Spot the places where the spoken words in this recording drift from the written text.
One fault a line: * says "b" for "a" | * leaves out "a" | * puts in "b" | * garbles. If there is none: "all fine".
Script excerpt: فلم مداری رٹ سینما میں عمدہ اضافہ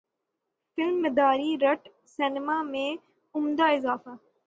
all fine